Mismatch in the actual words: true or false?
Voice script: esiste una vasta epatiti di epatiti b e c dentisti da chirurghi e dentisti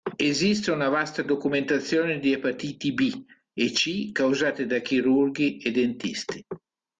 true